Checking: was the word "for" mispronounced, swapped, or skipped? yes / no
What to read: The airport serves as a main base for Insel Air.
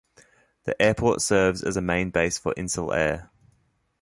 no